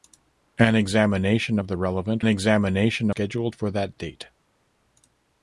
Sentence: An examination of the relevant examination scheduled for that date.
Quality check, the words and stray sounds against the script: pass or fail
pass